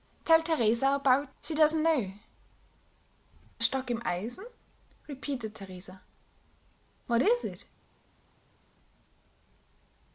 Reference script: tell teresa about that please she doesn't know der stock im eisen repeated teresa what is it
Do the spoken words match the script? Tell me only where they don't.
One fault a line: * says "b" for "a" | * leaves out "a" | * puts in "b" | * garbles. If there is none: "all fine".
* leaves out "that please"
* leaves out "der"